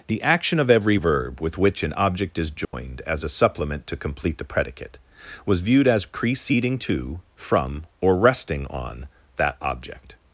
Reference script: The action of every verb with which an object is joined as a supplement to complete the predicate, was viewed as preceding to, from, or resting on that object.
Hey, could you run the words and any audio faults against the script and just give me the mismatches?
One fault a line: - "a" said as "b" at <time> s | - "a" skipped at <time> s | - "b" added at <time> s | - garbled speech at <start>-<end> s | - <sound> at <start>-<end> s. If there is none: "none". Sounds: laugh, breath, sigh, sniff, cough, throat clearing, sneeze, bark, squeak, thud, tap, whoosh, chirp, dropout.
- dropout at 2.6-2.7 s